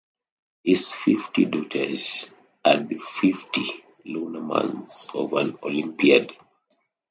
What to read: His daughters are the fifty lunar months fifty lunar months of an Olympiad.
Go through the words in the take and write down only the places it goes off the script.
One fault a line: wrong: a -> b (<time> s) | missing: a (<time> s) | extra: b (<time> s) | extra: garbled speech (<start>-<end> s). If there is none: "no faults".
extra: fifty (0.9 s)
missing: fifty lunar months (5.1 s)